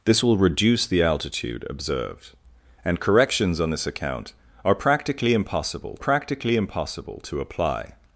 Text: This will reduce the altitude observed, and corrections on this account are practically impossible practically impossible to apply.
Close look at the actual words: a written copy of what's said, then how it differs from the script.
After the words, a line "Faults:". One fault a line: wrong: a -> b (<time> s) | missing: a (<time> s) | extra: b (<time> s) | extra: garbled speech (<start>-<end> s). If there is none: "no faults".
This will reduce the altitude observed, and corrections on this account are practically impossible practically impossible to apply.
Faults:
no faults